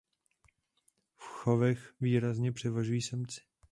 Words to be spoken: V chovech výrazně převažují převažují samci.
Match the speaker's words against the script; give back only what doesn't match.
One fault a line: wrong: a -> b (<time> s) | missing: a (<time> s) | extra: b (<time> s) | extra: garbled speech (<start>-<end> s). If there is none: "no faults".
missing: převažují (3.0 s)